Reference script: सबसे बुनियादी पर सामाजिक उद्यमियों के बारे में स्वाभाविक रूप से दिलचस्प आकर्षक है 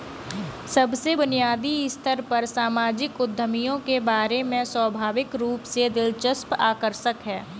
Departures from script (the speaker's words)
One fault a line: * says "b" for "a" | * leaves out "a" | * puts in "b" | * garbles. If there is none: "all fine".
* puts in "स्तर"